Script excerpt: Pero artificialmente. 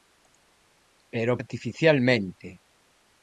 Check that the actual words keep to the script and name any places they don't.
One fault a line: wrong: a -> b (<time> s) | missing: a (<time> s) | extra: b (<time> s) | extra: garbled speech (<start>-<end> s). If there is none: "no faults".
no faults